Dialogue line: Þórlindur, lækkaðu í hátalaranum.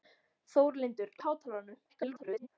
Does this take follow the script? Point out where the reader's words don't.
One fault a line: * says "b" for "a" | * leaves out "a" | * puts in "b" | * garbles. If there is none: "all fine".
* leaves out "lækkaðu"
* garbles